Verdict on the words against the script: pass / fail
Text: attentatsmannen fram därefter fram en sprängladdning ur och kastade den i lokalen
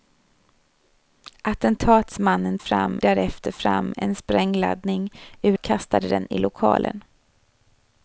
pass